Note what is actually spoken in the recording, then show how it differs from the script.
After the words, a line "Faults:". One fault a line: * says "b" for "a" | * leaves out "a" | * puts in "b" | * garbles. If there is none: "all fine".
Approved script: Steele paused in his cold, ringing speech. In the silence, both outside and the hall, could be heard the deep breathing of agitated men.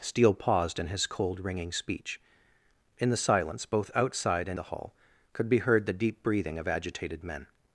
Steele paused in his cold, ringing speech. In the silence, both outside and the hall, could be heard the deep breathing of agitated men.
Faults:
all fine